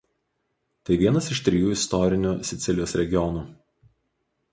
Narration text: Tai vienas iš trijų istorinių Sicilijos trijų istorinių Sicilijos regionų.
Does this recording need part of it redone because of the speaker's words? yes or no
yes